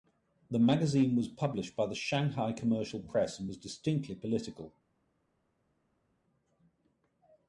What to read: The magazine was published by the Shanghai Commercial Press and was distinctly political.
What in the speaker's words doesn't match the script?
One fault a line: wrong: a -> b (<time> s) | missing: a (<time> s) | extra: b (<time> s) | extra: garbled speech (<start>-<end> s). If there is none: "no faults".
no faults